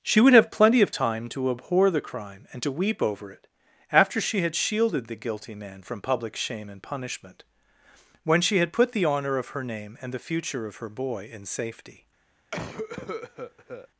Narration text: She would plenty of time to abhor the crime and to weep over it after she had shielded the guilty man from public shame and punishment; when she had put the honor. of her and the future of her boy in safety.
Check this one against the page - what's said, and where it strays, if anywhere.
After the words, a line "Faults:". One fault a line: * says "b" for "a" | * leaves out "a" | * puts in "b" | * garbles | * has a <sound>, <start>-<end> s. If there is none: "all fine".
She would have plenty of time to abhor the crime and to weep over it after she had shielded the guilty man from public shame and punishment; when she had put the honor. of her name and the future of her boy in safety.
Faults:
* puts in "have"
* puts in "name"
* has a cough, 12.5-13.9 s